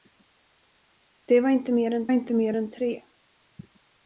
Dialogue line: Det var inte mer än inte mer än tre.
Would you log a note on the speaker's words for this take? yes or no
no